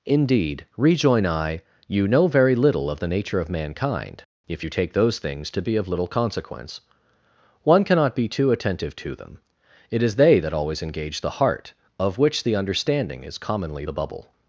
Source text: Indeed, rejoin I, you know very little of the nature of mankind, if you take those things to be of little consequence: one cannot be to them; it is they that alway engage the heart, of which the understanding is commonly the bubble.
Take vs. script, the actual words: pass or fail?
fail